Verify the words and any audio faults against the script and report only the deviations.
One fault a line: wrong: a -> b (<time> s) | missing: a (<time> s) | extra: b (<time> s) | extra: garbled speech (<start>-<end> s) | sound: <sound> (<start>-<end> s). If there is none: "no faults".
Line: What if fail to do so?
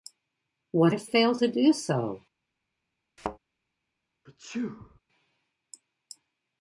sound: thud (3.2-3.4 s)
sound: sneeze (4.3-5.0 s)